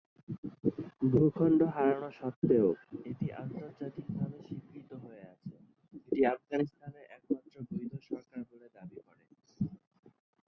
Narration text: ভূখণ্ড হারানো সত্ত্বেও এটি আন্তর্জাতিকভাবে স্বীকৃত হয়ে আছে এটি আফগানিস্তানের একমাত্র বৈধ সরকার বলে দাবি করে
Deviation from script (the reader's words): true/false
false